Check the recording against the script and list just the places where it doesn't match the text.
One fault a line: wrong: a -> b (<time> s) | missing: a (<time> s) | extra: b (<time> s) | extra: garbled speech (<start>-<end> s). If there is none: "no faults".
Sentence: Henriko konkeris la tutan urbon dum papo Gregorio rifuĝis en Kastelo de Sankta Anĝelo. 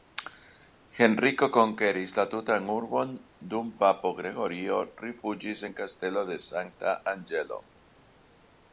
no faults